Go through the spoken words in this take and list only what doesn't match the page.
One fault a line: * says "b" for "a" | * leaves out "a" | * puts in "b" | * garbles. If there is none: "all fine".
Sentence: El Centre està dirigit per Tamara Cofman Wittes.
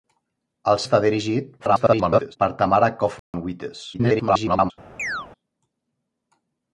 * leaves out "Centre"
* garbles
* garbles